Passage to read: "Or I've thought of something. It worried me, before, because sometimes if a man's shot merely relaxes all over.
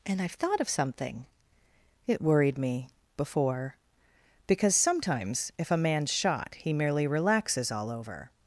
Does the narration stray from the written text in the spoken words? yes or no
yes